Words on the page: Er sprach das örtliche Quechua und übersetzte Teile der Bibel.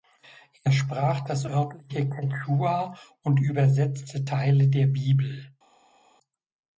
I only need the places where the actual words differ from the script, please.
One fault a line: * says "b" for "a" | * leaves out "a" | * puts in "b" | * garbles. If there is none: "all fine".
all fine